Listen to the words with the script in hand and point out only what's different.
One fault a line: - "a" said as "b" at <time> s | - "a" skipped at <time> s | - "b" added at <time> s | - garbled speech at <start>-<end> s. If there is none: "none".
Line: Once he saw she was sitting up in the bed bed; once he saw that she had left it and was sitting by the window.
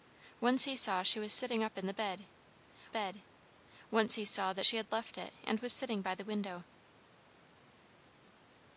none